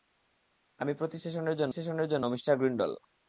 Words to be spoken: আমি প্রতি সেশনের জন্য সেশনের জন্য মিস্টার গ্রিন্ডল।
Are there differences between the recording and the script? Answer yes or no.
no